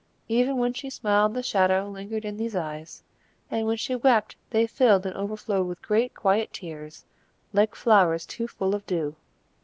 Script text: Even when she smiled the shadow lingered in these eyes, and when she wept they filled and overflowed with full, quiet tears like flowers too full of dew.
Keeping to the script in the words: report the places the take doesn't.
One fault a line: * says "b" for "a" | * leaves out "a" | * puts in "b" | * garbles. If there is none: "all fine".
* says "great" for "full"